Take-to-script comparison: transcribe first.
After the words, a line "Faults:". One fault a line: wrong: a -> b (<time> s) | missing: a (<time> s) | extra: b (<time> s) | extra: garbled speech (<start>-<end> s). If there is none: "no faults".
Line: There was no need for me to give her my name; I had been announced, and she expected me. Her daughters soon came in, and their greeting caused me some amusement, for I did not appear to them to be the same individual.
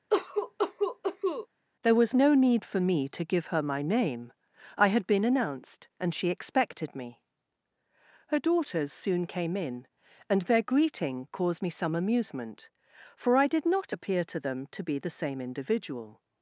There was no need for me to give her my name; I had been announced, and she expected me. Her daughters soon came in, and their greeting caused me some amusement, for I did not appear to them to be the same individual.
Faults:
no faults